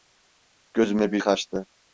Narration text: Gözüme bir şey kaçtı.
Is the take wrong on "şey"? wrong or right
wrong